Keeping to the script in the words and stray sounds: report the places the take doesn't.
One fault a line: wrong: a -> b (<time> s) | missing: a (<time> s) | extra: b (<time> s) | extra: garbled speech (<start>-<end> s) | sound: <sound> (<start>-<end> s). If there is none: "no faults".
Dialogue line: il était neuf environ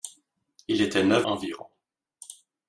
no faults